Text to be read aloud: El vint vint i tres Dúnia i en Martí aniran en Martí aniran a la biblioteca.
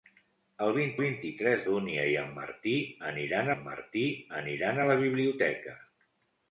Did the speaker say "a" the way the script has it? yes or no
yes